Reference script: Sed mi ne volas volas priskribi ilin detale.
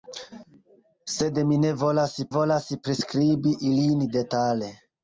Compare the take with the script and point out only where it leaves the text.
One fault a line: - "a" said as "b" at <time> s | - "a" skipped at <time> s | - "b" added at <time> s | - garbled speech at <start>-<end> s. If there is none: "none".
none